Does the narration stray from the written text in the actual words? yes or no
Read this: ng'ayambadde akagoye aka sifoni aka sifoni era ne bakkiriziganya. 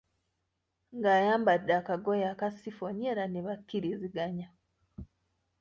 yes